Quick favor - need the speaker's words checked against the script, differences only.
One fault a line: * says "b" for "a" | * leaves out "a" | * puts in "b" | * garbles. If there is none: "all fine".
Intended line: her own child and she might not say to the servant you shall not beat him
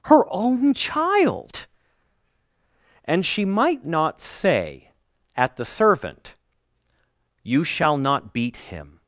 * says "at" for "to"